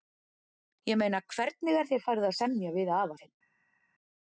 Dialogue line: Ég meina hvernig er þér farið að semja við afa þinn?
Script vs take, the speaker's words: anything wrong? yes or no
no